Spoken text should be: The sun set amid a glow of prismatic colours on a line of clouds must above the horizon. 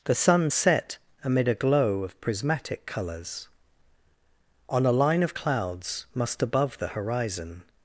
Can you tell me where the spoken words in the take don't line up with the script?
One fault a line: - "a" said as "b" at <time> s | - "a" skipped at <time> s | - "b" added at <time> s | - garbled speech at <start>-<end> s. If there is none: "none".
none